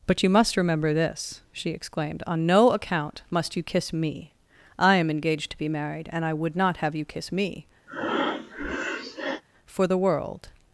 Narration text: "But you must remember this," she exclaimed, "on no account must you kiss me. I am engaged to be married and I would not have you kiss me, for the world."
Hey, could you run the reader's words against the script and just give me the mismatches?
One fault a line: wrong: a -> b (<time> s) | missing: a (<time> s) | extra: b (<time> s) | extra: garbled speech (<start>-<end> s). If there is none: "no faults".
no faults